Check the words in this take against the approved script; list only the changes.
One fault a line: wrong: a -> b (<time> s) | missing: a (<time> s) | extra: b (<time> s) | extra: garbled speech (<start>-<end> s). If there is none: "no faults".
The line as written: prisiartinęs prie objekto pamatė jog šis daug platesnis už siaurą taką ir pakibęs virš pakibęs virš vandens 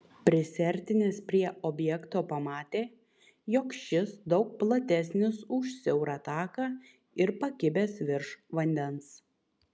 missing: pakibęs virš (8.3 s)